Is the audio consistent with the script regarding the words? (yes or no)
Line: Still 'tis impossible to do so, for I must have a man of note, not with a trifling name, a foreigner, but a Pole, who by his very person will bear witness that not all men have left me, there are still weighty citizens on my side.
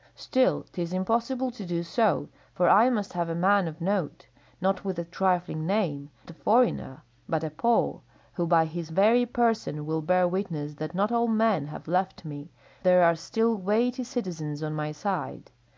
yes